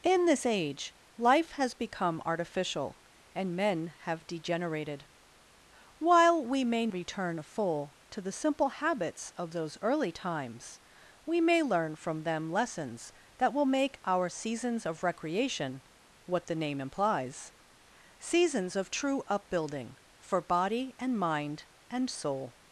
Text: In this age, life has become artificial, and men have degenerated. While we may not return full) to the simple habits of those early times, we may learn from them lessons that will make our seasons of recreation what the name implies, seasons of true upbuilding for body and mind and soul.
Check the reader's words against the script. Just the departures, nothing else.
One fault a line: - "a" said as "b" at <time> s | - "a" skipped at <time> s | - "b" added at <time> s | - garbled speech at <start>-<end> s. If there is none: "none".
- "not" skipped at 6.9 s